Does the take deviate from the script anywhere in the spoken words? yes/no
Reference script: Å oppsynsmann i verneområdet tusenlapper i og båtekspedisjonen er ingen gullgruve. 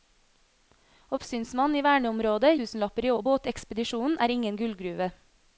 no